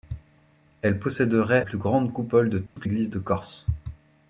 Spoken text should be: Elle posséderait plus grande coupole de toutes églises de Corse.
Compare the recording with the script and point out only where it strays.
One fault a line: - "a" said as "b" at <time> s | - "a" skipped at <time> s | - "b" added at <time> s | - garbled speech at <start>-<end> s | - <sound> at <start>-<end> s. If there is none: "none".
- dropout at 2.7-2.8 s